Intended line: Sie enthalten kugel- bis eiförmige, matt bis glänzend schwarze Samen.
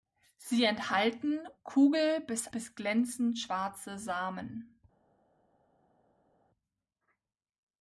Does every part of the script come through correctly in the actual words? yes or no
no